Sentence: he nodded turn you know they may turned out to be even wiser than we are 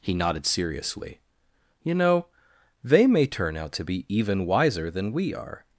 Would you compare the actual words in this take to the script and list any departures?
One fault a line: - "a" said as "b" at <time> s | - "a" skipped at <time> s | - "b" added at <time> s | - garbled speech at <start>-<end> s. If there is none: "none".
- "turn" said as "seriously" at 0.5 s
- "turned" said as "turn" at 3.3 s